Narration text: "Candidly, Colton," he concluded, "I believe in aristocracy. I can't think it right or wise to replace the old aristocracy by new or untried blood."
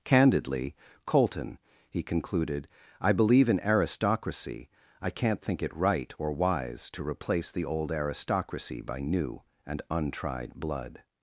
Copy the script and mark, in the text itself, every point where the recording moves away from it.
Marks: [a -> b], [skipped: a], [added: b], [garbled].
"Candidly, Colton," he concluded, "I believe in aristocracy. I can't think it right or wise to replace the old aristocracy by new [or -> and] untried blood."